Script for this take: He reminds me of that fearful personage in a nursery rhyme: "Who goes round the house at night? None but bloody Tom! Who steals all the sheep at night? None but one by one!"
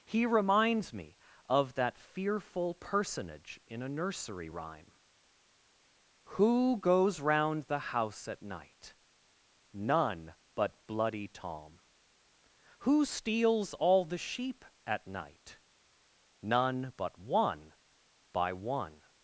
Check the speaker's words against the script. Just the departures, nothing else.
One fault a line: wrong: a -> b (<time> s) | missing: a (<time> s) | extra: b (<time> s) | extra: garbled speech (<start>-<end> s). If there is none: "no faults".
no faults